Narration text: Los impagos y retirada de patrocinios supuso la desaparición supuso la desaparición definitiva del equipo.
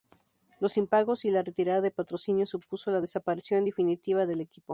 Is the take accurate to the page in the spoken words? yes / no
no